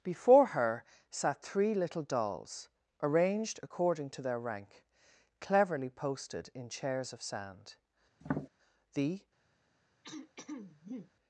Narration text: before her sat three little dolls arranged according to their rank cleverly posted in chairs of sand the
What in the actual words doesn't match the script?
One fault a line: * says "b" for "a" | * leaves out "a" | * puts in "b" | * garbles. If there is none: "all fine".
all fine